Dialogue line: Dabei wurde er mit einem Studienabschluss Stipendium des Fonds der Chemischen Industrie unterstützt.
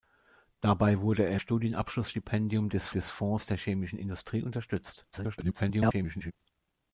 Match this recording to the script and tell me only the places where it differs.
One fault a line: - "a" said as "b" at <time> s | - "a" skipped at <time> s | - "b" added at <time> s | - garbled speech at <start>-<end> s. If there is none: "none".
- "mit einem" skipped at 1.4 s
- "des" added at 2.9 s
- garbled speech at 5.1-6.3 s